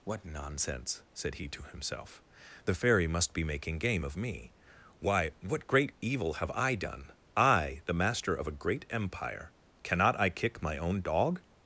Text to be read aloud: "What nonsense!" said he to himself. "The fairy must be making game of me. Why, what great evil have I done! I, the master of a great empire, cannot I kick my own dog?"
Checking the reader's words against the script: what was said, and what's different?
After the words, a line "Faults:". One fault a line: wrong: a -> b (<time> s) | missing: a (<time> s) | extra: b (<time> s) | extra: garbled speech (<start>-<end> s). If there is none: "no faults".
"What nonsense!" said he to himself. "The fairy must be making game of me. Why, what great evil have I done! I, the master of a great empire, cannot I kick my own dog?"
Faults:
no faults